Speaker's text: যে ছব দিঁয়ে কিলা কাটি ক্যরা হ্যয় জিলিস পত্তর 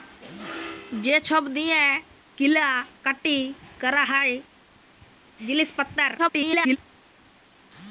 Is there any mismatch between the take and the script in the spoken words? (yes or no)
yes